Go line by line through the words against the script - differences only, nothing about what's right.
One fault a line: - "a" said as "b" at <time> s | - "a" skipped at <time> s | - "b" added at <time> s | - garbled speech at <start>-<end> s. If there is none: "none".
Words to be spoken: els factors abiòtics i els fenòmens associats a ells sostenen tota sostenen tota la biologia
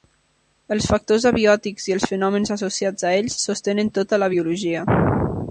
- "sostenen tota" skipped at 4.2 s